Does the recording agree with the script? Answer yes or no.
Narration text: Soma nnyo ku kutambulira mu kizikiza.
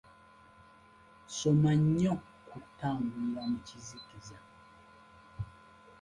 yes